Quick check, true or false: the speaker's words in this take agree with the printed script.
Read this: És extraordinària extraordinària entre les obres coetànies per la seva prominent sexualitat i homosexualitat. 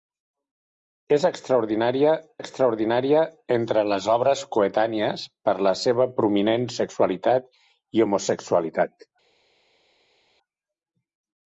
true